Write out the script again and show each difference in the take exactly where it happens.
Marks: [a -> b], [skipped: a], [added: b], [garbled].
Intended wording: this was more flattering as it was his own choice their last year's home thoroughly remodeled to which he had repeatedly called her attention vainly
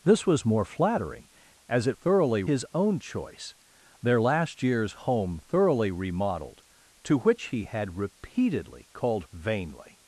this was more flattering as it [was -> thoroughly] his own choice their last year's home thoroughly remodeled to which he had repeatedly called [skipped: her attention] vainly